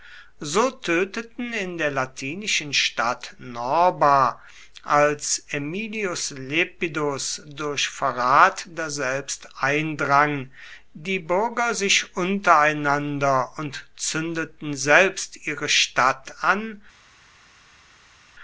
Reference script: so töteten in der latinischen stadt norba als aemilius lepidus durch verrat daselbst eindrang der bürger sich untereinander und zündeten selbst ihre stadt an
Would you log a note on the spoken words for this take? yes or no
yes